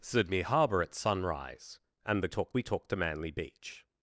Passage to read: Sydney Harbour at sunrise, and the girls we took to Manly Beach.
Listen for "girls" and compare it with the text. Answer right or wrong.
wrong